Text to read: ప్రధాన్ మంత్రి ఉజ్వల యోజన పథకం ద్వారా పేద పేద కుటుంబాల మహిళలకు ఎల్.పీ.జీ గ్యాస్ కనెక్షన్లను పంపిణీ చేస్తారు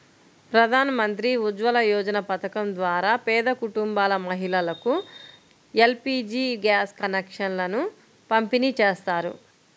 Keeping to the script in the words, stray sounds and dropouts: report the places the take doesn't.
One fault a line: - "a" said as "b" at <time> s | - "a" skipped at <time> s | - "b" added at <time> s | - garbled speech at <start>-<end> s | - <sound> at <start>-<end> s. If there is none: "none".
- "పేద" skipped at 3.5 s